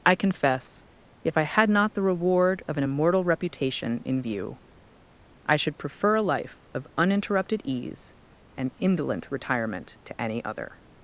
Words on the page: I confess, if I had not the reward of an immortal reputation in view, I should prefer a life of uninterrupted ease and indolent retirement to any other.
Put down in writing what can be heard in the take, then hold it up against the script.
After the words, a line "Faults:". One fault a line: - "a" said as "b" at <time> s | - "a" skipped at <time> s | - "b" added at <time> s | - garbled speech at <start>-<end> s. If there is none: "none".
I confess, if I had not the reward of an immortal reputation in view, I should prefer a life of uninterrupted ease and indolent retirement to any other.
Faults:
none